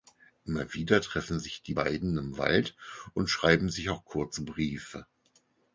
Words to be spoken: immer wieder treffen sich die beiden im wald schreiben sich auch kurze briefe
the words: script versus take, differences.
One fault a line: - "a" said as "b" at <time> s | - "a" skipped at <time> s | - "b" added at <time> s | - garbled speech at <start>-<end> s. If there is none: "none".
- "und" added at 3.1 s